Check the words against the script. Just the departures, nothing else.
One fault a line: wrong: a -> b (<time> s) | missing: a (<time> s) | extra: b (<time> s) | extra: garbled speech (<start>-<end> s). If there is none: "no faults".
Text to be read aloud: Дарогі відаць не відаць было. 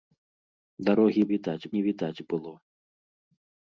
no faults